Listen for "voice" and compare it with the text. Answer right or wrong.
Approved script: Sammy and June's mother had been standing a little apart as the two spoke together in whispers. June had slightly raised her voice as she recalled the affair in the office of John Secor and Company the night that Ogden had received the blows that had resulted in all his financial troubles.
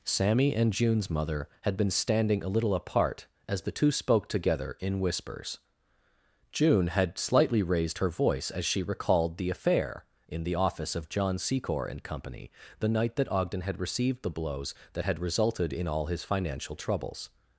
right